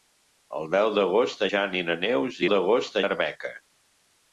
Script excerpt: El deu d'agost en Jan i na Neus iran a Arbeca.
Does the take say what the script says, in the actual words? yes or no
no